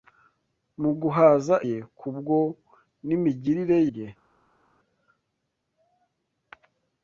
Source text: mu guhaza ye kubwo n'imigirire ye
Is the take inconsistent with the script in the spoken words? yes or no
no